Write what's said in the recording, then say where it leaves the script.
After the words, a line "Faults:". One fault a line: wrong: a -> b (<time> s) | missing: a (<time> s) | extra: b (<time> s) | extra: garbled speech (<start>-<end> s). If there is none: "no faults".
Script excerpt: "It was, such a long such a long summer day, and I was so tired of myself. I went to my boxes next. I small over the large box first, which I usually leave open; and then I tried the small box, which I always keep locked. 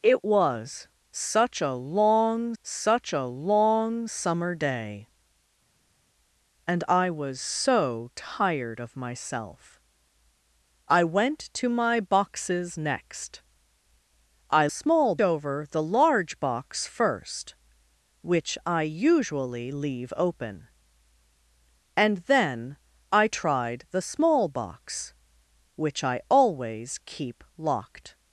"It was, such a long such a long summer day, and I was so tired of myself. I went to my boxes next. I small over the large box first, which I usually leave open; and then I tried the small box, which I always keep locked.
Faults:
no faults